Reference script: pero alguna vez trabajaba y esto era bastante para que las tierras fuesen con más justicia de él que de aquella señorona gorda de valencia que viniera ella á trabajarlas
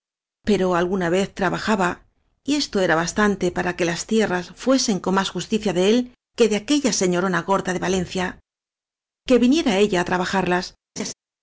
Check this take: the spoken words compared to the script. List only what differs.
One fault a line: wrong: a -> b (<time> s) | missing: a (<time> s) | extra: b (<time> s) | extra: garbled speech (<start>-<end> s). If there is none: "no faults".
no faults